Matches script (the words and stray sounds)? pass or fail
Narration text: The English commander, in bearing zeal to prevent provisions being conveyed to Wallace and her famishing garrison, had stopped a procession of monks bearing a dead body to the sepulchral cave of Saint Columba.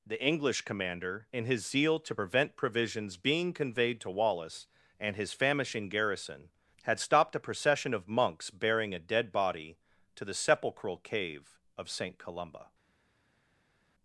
fail